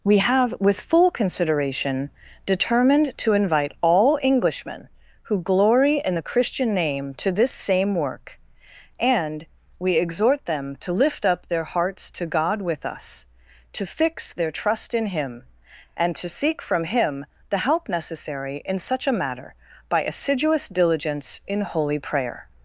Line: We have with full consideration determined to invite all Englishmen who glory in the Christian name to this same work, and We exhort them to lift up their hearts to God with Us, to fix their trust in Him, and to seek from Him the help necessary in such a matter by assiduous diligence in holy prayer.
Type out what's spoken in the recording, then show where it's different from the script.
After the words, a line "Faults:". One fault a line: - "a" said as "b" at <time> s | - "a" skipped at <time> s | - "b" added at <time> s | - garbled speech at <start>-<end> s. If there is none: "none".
We have with full consideration determined to invite all Englishmen who glory in the Christian name to this same work, and We exhort them to lift up their hearts to God with Us, to fix their trust in Him, and to seek from Him the help necessary in such a matter by assiduous diligence in holy prayer.
Faults:
none